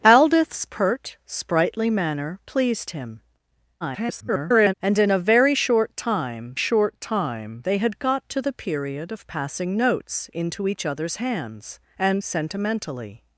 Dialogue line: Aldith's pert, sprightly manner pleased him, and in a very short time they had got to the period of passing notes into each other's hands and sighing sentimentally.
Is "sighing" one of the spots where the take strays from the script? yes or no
yes